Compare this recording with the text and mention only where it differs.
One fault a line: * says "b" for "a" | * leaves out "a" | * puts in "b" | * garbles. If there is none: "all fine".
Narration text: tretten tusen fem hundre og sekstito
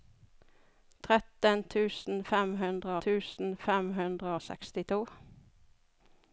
* puts in "tusen fem hundre"